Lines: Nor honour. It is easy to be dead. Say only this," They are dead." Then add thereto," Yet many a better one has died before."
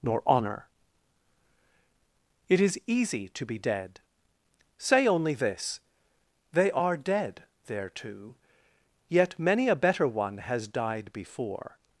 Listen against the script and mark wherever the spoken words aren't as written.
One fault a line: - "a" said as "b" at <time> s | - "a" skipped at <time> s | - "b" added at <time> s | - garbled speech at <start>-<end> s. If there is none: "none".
- "Then add" skipped at 7.4 s